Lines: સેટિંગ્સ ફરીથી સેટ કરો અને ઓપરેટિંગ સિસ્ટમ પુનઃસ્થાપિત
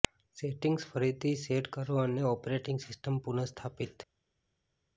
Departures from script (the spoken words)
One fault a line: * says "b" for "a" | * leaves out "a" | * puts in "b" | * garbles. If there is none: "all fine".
all fine